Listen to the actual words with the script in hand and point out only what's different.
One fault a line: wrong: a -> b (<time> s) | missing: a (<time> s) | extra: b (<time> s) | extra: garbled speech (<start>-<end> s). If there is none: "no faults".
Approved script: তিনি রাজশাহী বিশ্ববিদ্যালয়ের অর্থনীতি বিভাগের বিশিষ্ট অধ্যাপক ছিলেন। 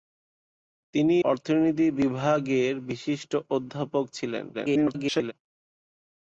missing: রাজশাহী বিশ্ববিদ্যালয়ের (1.1 s)
extra: garbled speech (4.5-5.3 s)